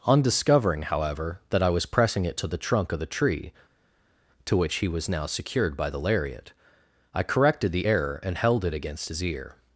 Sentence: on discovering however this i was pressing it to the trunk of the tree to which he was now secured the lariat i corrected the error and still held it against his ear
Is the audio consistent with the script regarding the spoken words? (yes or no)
no